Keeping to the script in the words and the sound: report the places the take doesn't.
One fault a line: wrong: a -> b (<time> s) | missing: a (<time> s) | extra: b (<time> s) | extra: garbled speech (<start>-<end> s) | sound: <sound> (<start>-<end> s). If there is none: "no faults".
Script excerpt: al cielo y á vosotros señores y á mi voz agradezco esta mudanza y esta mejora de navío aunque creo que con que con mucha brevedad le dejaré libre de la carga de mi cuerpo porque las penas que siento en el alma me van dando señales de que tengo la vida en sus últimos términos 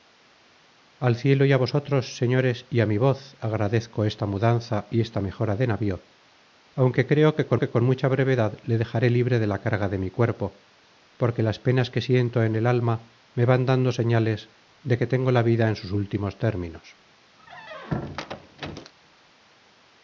sound: squeak (17.4-18.9 s)